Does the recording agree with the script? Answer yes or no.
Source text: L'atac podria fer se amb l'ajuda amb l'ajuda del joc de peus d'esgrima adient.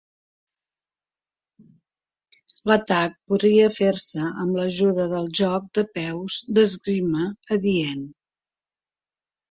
no